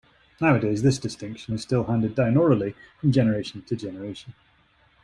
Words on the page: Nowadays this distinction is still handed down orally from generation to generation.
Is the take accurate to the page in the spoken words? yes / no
yes